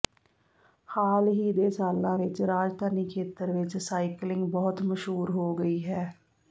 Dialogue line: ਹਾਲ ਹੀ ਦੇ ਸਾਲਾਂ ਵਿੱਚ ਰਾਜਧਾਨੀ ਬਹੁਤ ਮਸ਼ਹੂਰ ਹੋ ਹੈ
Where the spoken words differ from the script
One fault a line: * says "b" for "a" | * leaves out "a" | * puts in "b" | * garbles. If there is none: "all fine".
* puts in "ਖੇਤਰ ਵਿੱਚ ਸਾਈਕਲਿੰਗ"
* puts in "ਗਈ"